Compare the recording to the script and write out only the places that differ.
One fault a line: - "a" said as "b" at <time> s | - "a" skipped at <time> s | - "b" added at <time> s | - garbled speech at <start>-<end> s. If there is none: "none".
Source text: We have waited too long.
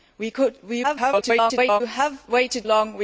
- garbled speech at 0.8-1.8 s
- "too" skipped at 2.6 s